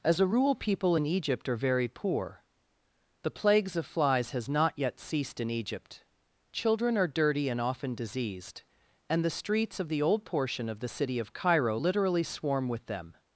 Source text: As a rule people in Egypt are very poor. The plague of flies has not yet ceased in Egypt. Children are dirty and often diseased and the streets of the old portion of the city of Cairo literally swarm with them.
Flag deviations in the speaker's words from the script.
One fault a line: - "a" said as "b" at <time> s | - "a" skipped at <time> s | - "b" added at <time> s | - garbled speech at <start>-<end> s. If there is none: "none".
- "plague" said as "plagues" at 3.3 s